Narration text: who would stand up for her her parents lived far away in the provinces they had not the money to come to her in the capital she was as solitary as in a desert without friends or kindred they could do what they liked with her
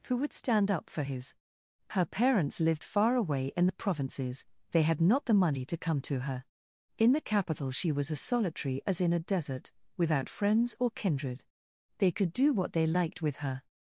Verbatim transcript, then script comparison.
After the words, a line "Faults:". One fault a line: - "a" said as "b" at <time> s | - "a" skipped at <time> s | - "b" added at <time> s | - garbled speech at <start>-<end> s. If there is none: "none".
who would stand up for his her parents lived far away in the provinces they had not the money to come to her in the capital she was as solitary as in a desert without friends or kindred they could do what they liked with her
Faults:
- "her" said as "his" at 1.0 s